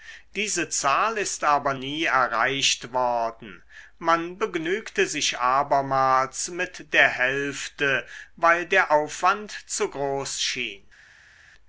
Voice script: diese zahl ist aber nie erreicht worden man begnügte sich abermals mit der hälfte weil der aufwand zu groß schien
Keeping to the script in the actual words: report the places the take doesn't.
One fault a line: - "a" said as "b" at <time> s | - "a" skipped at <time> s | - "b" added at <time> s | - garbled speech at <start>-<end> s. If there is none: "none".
none